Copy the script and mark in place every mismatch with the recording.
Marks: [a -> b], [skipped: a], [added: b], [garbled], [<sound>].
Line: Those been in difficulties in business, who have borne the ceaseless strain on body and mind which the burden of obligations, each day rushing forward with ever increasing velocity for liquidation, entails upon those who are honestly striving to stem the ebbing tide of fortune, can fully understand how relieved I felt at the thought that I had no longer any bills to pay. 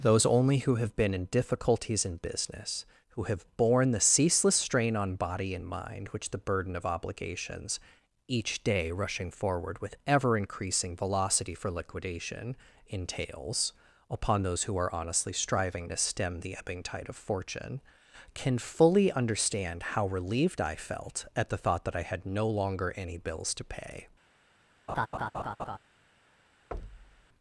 Those [added: only who have] been in difficulties in business, who have borne the ceaseless strain on body and mind which the burden of obligations, each day rushing forward with ever increasing velocity for liquidation, entails upon those who are honestly striving to stem the ebbing tide of fortune, can fully understand how relieved I felt at the thought that I had no longer any bills to pay. [laugh] [thud]